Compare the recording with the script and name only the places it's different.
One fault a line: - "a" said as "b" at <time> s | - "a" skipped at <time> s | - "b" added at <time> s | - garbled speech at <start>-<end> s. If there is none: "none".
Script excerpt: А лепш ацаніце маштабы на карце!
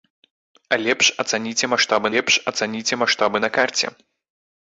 - "лепш ацаніце маштабы" added at 2.1 s